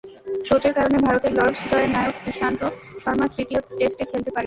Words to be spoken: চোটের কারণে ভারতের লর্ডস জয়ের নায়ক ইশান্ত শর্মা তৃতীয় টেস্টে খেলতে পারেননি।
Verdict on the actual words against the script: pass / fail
pass